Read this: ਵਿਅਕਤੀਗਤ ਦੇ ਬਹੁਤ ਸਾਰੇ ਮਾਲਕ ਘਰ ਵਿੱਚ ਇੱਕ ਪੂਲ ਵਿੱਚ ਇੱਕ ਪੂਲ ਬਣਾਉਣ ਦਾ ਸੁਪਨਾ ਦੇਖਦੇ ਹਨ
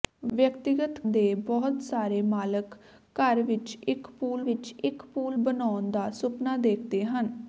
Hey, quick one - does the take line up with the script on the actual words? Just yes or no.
yes